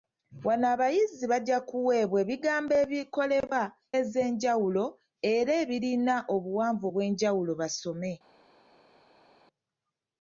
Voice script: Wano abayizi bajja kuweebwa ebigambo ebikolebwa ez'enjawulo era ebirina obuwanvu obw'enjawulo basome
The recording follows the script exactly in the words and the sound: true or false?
true